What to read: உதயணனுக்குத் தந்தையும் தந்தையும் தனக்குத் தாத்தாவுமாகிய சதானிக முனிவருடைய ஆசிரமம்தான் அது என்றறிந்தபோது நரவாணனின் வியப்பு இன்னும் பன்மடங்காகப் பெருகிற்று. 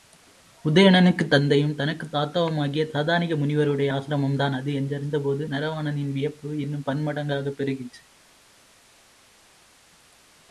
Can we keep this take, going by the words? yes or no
no